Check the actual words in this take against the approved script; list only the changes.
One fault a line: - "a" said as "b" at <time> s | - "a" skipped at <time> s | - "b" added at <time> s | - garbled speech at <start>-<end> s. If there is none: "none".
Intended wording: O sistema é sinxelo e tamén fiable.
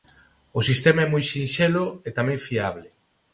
- "moi" added at 1.1 s